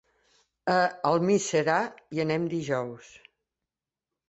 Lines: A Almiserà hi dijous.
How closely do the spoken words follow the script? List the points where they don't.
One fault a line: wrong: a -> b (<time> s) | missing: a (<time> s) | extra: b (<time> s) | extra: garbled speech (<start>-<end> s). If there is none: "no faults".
extra: anem (2.3 s)